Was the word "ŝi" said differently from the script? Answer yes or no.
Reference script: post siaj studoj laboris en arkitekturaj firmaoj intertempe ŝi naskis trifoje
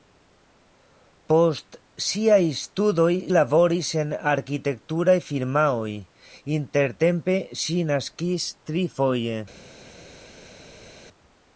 no